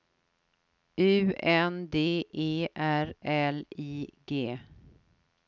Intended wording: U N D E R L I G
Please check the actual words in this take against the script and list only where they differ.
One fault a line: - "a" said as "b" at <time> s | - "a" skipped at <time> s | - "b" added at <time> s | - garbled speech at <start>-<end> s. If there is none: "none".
none